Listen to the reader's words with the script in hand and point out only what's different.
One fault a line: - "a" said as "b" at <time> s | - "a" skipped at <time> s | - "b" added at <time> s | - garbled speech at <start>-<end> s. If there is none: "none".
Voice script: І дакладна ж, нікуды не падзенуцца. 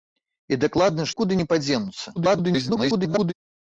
- "ж" skipped at 1.1 s
- garbled speech at 2.2-3.3 s